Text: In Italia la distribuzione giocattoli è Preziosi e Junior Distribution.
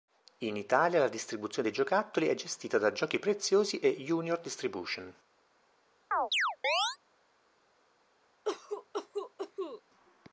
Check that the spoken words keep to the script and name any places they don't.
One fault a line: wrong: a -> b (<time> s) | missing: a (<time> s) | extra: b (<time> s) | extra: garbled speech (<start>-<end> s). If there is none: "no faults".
extra: dei (1.7 s)
extra: gestita da Giochi (2.3 s)